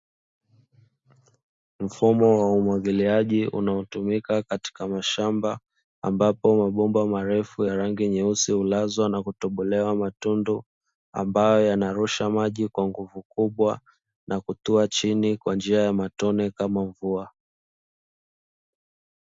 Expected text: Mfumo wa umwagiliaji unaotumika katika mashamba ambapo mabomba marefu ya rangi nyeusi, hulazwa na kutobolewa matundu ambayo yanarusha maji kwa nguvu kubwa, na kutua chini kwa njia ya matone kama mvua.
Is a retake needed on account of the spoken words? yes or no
no